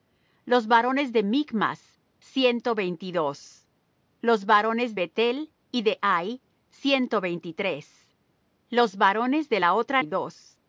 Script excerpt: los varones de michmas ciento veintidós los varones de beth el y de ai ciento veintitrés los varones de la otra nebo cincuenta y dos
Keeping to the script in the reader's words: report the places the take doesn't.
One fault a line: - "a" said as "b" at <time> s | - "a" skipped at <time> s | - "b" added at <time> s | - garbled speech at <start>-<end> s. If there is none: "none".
- "de" skipped at 5.0 s
- "nebo cincuenta" skipped at 10.0 s